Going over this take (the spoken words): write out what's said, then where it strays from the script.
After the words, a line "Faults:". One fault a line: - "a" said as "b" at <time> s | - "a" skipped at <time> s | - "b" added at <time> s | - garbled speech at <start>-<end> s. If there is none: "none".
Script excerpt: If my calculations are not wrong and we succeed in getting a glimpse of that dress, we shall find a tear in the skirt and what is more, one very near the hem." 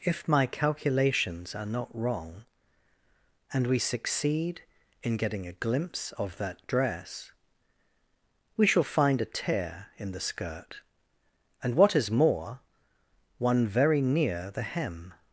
If my calculations are not wrong and we succeed in getting a glimpse of that dress, we shall find a tear in the skirt and what is more, one very near the hem."
Faults:
none